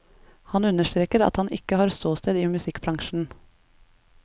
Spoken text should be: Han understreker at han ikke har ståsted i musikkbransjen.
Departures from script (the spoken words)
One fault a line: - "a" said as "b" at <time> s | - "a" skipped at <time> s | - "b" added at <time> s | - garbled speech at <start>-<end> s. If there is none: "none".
none